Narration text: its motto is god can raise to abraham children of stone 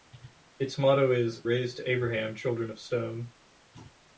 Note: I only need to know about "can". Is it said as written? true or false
false